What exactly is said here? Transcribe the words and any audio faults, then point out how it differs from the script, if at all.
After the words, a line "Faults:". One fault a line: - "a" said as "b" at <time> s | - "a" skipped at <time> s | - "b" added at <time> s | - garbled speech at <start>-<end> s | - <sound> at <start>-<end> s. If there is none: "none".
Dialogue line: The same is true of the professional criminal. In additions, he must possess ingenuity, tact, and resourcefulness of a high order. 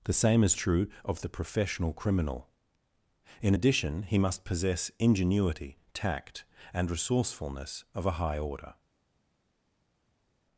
The same is true of the professional criminal. In addition, he must possess ingenuity, tact, and resourcefulness of a high order.
Faults:
- "additions" said as "addition" at 3.5 s